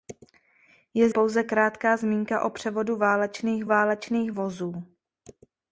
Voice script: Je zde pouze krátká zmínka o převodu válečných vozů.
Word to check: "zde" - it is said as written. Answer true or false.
false